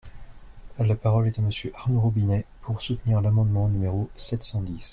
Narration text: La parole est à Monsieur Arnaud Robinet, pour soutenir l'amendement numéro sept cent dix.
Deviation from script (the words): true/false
false